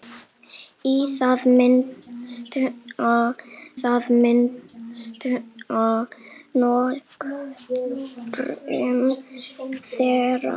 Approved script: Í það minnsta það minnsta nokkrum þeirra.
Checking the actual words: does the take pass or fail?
pass